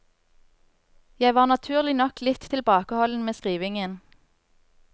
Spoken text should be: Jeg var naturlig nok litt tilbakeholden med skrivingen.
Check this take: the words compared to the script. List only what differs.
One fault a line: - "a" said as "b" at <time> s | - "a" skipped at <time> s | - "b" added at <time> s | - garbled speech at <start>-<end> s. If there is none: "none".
none